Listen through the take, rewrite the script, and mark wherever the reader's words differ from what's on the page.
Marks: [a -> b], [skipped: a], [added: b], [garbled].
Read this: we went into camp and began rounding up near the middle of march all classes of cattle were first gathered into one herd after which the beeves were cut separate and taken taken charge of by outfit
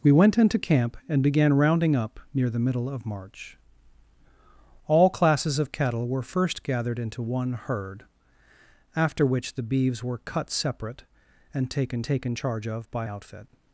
we went into camp and began rounding up near the middle of march all classes of cattle were first gathered into one herd after which the beeves were cut separate and taken taken charge of by outfit